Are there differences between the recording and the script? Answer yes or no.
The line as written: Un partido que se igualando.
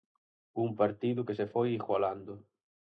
yes